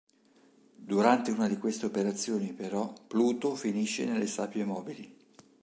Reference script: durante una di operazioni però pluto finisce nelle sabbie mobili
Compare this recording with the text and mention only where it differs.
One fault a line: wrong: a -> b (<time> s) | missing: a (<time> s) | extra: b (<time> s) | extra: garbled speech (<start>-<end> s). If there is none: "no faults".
extra: queste (1.6 s)